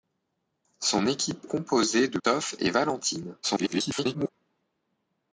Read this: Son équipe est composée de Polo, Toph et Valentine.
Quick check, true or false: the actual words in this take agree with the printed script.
false